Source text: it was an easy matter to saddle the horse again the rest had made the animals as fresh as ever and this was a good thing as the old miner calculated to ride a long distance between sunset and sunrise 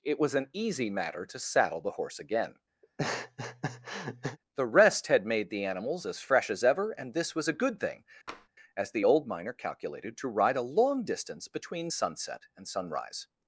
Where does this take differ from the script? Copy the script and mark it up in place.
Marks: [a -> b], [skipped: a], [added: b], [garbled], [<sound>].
it was an easy matter to saddle the horse again [laugh] the rest had made the animals as fresh as ever and this was a good thing [tap] as the old miner calculated to ride a long distance between sunset and sunrise